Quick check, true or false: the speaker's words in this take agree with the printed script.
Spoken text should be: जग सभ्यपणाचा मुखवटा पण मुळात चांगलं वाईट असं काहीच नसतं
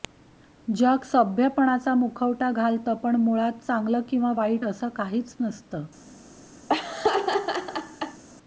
false